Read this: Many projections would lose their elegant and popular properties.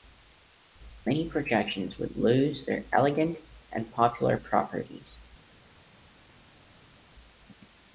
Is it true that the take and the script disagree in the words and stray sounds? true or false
false